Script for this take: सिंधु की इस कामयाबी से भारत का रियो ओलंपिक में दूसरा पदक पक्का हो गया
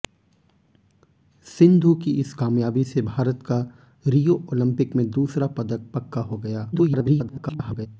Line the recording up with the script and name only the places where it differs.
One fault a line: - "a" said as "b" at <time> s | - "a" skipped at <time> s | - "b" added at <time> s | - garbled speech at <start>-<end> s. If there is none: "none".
- garbled speech at 6.7-7.9 s